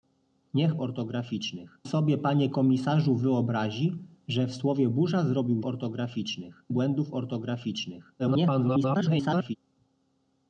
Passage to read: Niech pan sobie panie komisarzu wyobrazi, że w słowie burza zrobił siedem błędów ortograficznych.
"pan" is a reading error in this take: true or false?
true